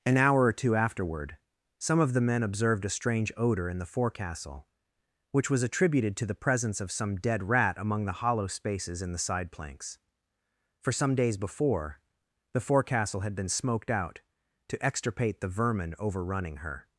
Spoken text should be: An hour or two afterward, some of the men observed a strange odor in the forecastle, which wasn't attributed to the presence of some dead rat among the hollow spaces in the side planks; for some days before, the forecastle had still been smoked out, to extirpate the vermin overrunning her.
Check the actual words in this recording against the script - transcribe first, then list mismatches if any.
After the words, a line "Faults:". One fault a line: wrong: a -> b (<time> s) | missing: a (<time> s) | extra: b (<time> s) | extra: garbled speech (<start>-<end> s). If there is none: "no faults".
An hour or two afterward, some of the men observed a strange odor in the forecastle, which was attributed to the presence of some dead rat among the hollow spaces in the side planks; for some days before, the forecastle had been smoked out, to extirpate the vermin overrunning her.
Faults:
wrong: wasn't -> was (5.5 s)
missing: still (13.4 s)